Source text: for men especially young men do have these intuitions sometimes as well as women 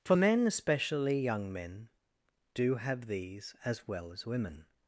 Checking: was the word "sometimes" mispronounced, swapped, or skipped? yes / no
yes